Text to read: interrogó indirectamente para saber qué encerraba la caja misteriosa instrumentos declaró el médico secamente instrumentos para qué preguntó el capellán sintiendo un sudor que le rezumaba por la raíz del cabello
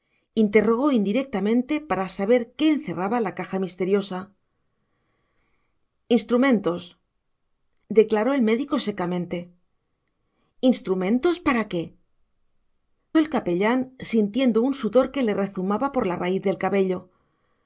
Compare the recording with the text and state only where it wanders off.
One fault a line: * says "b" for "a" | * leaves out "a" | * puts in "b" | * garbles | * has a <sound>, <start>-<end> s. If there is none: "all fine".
* leaves out "preguntó"